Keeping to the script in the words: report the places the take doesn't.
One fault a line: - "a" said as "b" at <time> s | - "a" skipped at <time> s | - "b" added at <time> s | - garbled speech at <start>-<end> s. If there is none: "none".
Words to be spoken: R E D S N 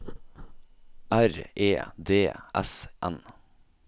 none